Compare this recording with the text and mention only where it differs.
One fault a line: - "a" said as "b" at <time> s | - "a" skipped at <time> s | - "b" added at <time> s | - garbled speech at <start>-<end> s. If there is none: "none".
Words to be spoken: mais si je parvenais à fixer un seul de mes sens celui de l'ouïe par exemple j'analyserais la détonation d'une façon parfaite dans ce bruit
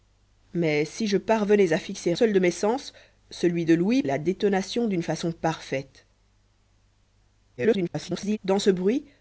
- "un" skipped at 2.1 s
- "par exemple j'analyserais" skipped at 4.0 s
- garbled speech at 7.6-8.4 s